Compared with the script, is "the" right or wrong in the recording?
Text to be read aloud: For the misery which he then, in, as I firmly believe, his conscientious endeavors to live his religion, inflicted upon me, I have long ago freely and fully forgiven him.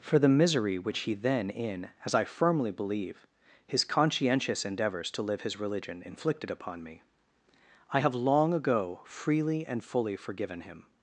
right